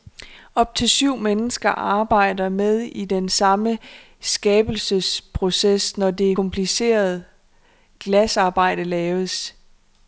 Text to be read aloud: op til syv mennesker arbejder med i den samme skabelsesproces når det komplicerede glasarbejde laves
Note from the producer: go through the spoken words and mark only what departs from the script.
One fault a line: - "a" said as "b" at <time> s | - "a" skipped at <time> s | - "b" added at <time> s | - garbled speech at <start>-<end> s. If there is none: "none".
none